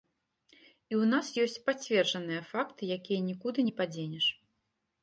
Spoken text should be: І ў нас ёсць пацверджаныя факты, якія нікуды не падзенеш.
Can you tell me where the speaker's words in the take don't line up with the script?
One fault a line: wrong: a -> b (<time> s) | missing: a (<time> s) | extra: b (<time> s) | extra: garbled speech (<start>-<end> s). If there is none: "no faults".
no faults